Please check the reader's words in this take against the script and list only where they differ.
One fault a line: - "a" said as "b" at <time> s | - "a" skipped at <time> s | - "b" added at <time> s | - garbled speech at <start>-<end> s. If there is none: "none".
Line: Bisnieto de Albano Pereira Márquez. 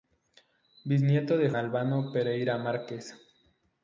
none